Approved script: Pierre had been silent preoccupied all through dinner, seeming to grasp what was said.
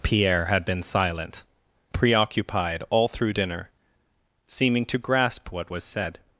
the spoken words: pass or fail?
pass